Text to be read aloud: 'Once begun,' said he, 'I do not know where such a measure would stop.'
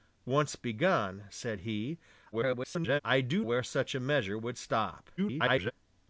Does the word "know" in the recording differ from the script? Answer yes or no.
yes